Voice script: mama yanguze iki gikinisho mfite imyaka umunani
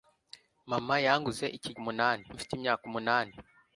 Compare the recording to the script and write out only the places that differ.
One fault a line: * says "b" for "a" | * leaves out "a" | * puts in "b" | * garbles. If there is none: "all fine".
* says "umunani" for "gikinisho"